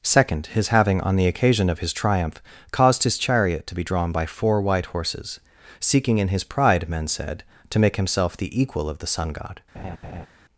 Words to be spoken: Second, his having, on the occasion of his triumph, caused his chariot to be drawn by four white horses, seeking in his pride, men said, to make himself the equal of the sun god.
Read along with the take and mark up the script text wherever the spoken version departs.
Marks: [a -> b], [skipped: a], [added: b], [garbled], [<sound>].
Second, his having, on the occasion of his triumph, caused his chariot to be drawn by four white horses, seeking in his pride, men said, to make himself the equal of the sun god. [laugh]